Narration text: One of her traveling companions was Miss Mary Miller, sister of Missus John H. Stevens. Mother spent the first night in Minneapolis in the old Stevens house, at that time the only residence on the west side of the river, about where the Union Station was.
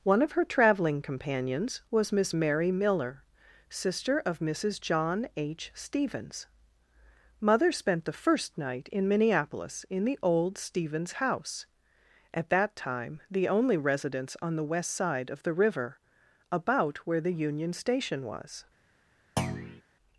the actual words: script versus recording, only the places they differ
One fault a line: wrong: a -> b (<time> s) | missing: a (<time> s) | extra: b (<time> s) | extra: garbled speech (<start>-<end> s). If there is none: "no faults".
no faults